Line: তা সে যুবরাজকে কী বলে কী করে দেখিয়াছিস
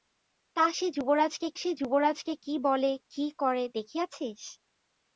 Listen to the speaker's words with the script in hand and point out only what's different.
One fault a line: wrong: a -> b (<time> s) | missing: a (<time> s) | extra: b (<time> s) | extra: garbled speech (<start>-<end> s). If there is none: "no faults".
extra: সে যুবরাজকে (1.6 s)